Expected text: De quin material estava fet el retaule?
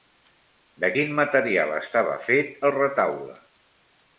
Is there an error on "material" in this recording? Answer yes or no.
no